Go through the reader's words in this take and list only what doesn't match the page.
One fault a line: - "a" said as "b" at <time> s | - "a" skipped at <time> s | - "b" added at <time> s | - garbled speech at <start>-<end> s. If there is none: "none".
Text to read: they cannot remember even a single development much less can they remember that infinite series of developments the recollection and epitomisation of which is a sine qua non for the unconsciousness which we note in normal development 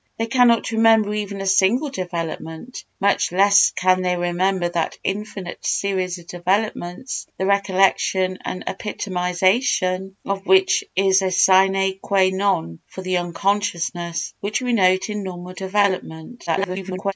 - garbled speech at 16.5-17.1 s